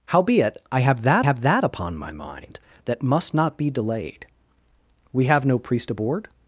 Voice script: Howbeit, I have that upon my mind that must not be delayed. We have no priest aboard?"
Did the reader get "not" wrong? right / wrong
right